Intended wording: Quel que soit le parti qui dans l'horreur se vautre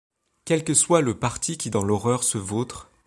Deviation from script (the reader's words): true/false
false